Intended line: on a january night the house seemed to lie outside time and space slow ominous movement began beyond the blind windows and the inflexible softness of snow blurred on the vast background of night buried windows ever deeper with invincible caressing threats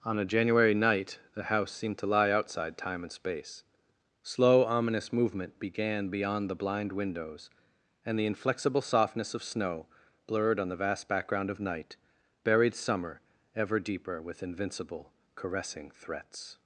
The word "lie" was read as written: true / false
true